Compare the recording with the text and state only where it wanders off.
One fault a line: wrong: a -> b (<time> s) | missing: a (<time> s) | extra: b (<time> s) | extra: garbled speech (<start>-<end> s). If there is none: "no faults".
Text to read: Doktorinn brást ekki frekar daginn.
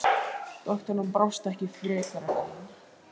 no faults